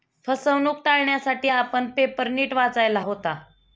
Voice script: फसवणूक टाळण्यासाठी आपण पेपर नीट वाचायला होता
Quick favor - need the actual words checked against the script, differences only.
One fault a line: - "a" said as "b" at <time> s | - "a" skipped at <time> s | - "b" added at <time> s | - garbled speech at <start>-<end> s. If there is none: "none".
none